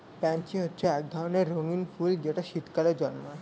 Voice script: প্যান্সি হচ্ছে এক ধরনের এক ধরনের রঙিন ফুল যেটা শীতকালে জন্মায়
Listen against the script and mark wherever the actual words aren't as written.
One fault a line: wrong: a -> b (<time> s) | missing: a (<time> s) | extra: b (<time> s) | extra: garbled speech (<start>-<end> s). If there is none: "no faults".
missing: এক ধরনের (1.5 s)